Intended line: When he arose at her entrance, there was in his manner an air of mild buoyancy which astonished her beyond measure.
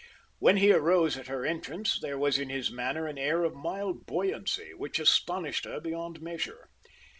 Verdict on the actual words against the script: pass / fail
pass